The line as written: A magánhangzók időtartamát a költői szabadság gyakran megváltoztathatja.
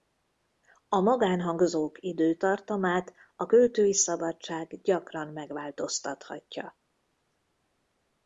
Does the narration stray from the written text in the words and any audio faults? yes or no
no